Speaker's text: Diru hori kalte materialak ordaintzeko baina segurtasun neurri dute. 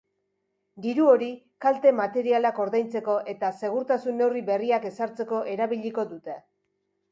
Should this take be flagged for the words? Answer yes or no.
yes